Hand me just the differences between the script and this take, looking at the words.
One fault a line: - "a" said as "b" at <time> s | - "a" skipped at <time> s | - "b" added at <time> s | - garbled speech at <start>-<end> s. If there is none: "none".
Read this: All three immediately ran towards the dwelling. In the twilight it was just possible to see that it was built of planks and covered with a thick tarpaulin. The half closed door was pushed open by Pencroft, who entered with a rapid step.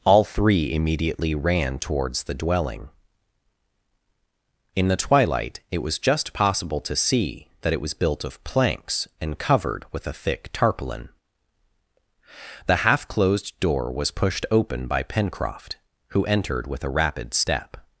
none